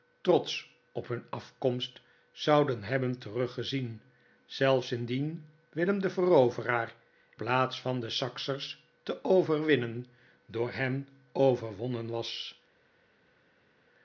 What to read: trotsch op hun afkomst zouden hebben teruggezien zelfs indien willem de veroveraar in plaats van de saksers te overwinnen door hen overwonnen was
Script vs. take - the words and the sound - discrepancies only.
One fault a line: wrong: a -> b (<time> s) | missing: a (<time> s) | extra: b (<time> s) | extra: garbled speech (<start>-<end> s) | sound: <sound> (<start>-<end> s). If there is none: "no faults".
missing: in (7.0 s)